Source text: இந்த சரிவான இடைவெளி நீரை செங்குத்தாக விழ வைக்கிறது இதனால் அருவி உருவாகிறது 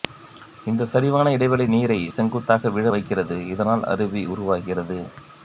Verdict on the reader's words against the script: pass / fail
pass